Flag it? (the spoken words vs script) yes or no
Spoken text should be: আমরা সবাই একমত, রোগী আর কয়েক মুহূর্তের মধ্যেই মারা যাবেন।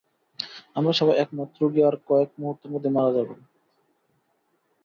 no